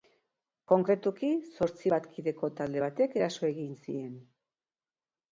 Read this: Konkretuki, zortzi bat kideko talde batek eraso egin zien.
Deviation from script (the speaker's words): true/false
false